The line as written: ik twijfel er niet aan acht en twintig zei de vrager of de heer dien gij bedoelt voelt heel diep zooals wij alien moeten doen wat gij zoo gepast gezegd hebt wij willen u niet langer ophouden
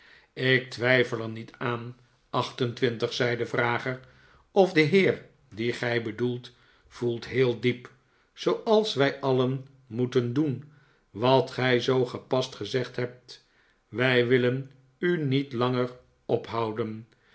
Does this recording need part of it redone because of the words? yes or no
no